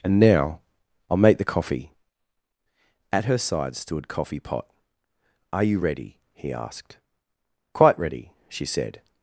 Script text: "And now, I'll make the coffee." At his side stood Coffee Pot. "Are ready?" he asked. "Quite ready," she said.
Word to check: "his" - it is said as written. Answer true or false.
false